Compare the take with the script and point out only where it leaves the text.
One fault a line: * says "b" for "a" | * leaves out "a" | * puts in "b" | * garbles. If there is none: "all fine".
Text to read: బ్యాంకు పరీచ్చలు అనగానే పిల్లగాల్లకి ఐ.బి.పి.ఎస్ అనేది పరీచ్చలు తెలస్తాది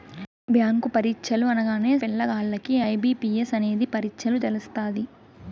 all fine